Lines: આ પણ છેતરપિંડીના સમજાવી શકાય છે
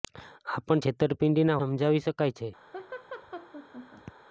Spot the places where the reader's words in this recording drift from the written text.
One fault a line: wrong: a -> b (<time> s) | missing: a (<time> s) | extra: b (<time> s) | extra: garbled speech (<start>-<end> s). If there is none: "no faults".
no faults